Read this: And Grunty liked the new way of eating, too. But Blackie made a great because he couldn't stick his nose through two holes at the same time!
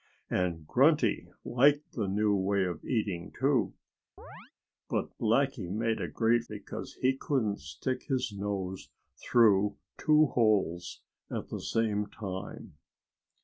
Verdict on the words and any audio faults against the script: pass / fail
fail